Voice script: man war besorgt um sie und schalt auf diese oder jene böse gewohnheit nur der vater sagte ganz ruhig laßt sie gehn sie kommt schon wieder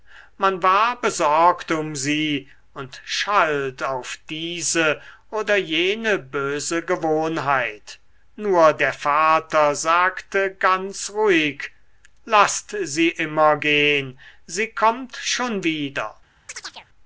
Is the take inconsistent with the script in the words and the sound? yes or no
yes